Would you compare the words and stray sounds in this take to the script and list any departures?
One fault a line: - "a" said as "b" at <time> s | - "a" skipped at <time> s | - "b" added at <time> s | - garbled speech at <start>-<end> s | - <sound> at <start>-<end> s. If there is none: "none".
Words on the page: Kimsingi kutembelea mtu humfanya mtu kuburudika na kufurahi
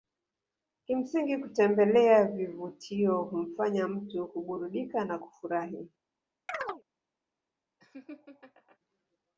- "mtu" said as "vivutio" at 2.2 s
- chirp at 6.5-6.8 s
- laugh at 7.8-8.8 s